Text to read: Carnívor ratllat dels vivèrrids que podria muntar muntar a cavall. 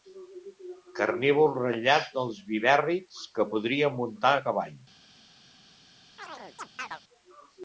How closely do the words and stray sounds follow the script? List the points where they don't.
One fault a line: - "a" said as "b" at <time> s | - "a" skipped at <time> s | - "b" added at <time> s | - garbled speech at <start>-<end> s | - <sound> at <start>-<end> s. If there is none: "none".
- "muntar" skipped at 4.3 s
- chirp at 6.2-7.0 s